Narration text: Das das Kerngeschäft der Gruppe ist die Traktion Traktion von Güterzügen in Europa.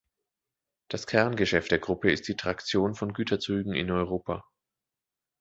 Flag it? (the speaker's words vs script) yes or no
yes